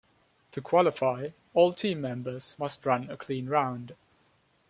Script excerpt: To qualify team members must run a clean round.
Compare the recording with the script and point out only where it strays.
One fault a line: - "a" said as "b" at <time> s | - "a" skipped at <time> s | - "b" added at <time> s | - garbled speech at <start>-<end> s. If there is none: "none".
- "all" added at 1.5 s